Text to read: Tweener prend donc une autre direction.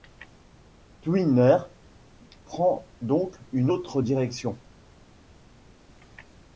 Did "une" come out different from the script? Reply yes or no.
no